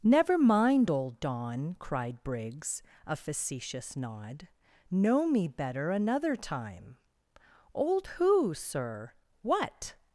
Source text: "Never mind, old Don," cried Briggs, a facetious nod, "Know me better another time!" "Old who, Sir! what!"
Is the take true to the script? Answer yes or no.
yes